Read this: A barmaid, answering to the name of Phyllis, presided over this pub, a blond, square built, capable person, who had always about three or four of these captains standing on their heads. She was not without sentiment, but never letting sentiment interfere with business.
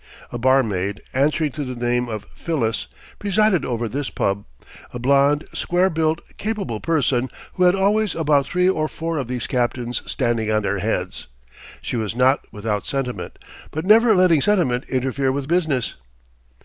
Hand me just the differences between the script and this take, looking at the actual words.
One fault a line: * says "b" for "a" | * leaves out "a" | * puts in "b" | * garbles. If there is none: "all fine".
all fine